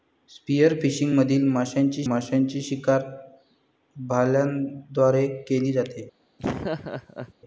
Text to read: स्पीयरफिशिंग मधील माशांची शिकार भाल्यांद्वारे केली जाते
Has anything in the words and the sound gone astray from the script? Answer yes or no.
yes